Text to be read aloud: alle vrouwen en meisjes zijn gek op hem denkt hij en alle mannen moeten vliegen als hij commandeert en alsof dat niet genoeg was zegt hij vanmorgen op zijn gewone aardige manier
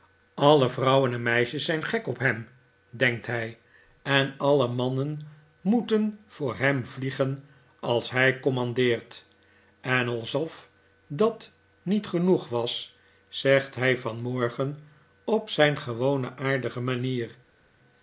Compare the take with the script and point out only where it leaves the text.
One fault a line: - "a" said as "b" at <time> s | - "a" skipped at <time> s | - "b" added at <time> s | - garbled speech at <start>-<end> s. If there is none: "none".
- "voor hem" added at 6.3 s